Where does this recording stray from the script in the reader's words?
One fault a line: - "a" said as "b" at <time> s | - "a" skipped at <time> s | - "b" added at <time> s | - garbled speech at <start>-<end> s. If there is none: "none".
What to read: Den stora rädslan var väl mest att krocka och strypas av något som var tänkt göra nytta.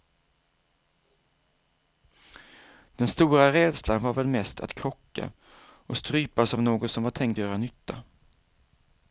none